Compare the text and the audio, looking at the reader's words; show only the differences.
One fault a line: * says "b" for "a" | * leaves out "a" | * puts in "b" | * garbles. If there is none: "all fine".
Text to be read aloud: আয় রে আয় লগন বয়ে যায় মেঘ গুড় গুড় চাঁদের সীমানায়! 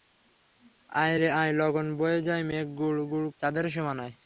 all fine